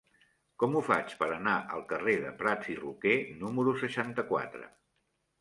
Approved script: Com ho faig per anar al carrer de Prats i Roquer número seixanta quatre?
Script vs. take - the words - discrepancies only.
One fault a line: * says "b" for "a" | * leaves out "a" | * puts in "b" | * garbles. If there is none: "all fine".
all fine